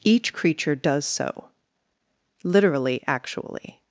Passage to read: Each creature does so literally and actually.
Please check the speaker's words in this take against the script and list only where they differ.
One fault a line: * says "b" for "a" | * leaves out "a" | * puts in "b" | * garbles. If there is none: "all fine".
* leaves out "and"